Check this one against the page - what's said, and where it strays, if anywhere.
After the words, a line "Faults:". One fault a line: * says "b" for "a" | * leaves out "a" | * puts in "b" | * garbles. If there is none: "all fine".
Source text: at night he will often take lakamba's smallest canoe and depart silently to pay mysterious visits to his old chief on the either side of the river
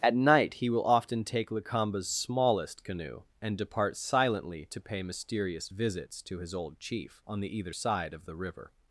at night he will often take lakamba's smallest canoe and depart silently to pay mysterious visits to his old chief on the either side of the river
Faults:
all fine